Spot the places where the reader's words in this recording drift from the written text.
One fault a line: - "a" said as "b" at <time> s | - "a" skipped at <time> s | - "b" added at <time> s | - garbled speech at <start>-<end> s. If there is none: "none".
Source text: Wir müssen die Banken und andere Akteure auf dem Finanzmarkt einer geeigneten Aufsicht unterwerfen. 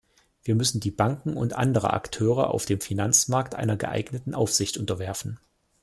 none